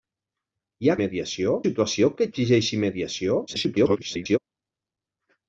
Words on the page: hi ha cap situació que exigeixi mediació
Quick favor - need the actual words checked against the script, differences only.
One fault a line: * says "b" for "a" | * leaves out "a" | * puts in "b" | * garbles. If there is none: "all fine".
* says "mediació" for "cap"
* garbles